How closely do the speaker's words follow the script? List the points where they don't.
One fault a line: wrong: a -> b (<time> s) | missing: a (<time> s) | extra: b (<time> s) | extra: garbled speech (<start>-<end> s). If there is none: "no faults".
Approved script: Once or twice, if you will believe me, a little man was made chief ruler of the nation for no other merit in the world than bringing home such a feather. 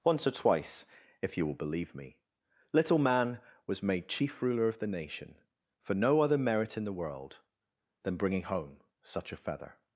missing: a (2.2 s)